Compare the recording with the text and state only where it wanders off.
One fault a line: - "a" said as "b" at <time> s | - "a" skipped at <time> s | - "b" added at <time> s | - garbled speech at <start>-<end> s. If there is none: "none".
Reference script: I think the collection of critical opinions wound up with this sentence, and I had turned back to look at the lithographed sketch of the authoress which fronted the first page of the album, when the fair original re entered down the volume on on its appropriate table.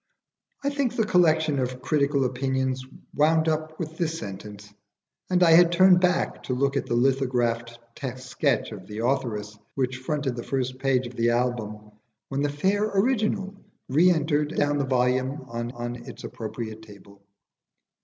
none